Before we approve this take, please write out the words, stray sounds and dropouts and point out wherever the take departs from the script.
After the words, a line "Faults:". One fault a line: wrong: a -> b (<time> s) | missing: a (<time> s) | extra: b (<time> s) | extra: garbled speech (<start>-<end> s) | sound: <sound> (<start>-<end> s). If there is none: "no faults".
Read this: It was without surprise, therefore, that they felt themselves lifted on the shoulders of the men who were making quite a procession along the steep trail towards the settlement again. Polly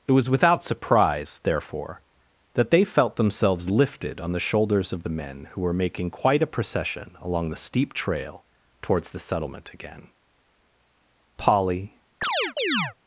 It was without surprise, therefore, that they felt themselves lifted on the shoulders of the men who were making quite a procession along the steep trail towards the settlement again. Polly
Faults:
sound: chirp (12.2-12.9 s)